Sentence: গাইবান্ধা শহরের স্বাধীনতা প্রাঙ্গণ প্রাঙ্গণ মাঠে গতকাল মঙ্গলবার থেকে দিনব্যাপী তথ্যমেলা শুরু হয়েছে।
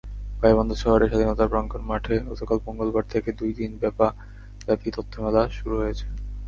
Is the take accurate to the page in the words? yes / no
no